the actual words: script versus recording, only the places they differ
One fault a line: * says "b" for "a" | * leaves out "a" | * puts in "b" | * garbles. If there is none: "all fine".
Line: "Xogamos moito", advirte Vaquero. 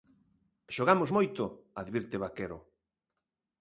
all fine